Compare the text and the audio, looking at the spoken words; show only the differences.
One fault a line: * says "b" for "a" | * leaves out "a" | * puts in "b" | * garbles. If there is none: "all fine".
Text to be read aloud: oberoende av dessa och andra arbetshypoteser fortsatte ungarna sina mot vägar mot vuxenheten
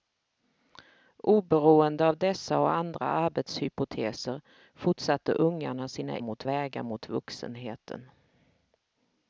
all fine